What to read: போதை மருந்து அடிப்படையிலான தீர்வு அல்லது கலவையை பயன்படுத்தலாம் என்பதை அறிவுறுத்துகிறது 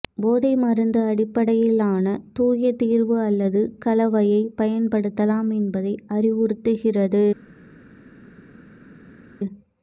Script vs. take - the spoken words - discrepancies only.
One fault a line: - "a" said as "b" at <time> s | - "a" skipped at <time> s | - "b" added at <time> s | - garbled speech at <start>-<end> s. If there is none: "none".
- "தூய" added at 2.4 s